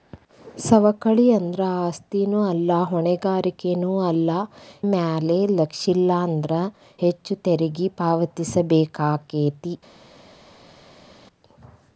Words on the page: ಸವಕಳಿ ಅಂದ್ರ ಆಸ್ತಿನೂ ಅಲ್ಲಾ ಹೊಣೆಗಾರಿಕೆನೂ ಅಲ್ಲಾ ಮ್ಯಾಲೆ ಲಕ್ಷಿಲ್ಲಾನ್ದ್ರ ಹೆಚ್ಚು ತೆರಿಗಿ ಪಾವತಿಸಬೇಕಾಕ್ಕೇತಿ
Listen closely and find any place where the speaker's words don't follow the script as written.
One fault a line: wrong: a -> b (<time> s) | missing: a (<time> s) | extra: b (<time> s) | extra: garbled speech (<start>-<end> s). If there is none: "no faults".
no faults